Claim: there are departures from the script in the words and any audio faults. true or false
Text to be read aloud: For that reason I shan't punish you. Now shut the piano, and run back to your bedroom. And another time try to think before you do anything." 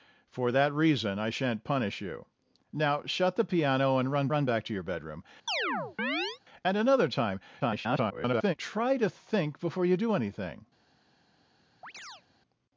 true